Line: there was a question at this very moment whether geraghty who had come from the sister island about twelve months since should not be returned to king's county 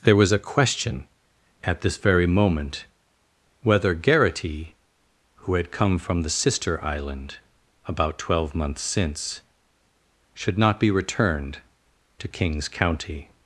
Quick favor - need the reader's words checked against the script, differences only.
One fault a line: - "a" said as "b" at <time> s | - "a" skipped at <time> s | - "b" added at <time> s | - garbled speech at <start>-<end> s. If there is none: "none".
none